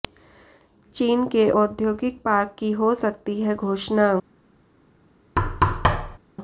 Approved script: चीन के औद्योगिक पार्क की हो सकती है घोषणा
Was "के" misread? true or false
false